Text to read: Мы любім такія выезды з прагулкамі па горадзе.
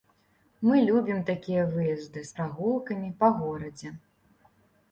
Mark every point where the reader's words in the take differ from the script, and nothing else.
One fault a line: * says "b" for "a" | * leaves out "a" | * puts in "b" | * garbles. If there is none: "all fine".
all fine